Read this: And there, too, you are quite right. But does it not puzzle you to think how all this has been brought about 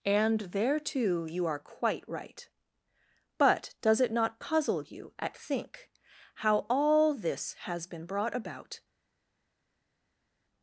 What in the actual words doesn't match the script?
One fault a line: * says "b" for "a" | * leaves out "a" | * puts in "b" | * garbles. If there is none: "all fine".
* says "at" for "to"